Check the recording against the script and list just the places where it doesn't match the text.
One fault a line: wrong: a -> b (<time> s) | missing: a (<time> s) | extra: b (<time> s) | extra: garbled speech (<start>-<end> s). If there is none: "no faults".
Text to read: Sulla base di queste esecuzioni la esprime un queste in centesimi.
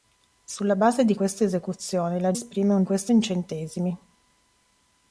no faults